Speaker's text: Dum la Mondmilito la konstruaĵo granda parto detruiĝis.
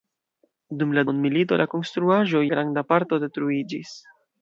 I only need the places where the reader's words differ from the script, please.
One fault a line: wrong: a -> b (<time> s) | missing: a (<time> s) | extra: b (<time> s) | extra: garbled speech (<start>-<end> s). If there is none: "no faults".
no faults